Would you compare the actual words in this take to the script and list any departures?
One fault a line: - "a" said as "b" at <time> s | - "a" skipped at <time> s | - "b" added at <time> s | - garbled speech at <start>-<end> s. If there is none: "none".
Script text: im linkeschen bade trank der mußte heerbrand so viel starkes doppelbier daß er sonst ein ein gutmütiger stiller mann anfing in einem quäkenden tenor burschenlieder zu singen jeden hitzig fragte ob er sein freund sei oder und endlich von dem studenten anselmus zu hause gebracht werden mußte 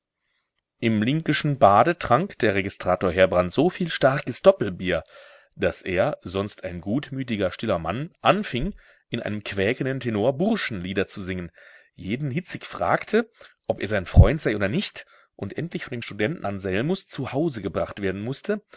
- "mußte" said as "registrator" at 2.5 s
- "ein" skipped at 6.8 s
- "nicht" added at 14.7 s